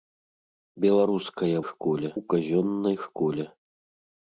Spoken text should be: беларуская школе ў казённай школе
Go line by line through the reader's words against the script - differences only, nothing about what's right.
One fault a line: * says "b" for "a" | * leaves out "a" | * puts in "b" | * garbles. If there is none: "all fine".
all fine